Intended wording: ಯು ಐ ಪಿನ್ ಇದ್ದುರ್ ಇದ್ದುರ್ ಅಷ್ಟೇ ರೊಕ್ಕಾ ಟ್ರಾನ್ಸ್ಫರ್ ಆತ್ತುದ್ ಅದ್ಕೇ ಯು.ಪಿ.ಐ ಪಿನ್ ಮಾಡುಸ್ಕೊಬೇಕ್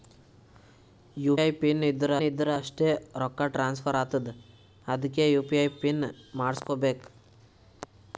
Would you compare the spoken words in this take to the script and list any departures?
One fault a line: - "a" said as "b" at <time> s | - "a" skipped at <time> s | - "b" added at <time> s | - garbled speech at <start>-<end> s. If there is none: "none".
none